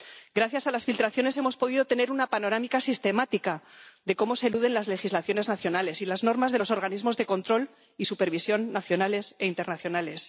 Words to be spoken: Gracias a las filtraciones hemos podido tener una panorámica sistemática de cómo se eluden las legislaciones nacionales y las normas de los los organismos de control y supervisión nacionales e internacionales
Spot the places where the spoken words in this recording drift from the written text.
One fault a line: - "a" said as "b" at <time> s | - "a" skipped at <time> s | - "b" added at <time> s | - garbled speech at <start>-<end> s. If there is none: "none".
- "los" skipped at 6.7 s